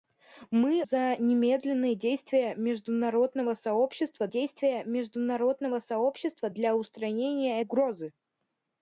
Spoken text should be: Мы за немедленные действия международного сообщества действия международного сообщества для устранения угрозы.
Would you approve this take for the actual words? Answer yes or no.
yes